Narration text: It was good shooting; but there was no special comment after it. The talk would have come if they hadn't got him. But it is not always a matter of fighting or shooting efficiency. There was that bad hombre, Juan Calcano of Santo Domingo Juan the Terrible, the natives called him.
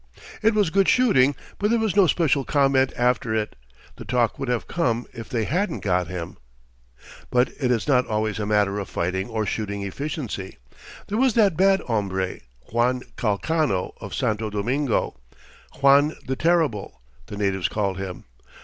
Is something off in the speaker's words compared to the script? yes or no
no